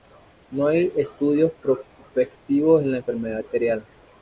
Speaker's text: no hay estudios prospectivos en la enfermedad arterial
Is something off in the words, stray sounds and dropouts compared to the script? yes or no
no